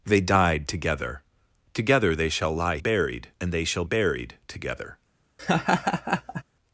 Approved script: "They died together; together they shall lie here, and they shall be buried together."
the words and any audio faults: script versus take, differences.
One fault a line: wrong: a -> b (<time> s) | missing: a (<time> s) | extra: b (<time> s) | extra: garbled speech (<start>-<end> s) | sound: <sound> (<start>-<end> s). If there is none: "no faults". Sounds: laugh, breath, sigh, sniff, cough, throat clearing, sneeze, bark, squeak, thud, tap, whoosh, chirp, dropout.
wrong: here -> buried (2.8 s)
missing: be (3.8 s)
sound: laugh (5.4-6.4 s)